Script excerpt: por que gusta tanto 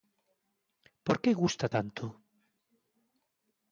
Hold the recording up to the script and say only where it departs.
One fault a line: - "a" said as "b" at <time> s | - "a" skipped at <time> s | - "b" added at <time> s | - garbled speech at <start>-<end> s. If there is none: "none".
none